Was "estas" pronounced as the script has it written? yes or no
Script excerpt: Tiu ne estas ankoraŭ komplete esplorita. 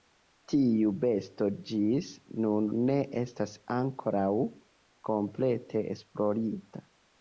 yes